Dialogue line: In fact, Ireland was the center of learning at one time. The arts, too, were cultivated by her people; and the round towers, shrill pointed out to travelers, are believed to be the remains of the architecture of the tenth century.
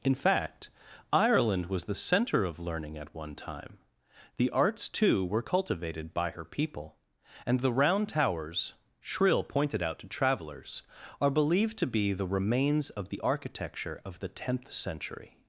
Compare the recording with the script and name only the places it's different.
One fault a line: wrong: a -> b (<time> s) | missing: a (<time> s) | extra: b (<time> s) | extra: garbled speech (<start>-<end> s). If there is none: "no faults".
no faults